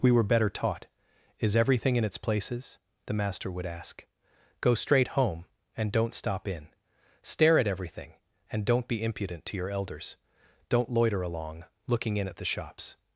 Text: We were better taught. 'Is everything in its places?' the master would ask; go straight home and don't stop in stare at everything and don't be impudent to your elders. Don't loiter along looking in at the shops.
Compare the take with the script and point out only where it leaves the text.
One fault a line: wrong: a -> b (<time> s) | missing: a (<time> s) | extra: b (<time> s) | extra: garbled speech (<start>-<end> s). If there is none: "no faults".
no faults